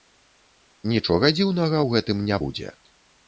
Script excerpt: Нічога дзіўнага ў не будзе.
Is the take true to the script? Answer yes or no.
no